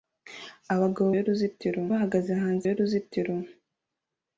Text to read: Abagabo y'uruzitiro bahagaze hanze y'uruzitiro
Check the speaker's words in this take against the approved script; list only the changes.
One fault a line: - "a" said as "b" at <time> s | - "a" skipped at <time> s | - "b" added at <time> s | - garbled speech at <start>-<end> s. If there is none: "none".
none